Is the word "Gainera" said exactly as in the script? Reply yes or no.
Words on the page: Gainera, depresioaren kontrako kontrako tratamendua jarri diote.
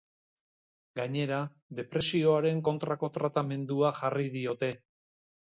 yes